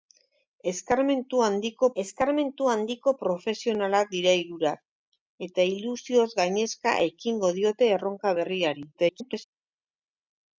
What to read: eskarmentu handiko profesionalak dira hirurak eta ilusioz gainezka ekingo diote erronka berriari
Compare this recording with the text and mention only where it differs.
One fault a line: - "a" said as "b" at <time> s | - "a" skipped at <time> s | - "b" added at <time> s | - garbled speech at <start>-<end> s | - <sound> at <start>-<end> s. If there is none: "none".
- "eskarmentu handiko" added at 2.0 s
- garbled speech at 8.9-9.4 s